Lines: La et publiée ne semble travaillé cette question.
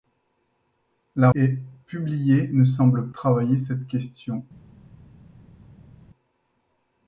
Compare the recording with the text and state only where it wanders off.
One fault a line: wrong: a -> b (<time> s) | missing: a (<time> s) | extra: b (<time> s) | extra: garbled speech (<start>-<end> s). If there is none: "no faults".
no faults